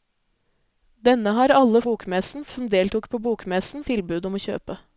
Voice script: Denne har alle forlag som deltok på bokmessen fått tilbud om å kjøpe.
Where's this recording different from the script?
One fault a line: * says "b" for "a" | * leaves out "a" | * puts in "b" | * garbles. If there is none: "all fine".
* says "bokmessen" for "forlag"
* leaves out "fått"